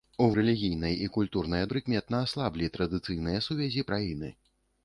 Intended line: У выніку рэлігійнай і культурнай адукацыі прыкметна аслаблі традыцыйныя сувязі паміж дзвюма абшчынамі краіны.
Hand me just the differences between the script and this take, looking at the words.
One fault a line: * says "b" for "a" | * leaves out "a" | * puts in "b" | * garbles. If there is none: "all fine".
* leaves out "выніку"
* leaves out "адукацыі"
* leaves out "паміж дзвюма абшчынамі"